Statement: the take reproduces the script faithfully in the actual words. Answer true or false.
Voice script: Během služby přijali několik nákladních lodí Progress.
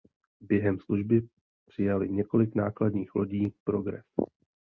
true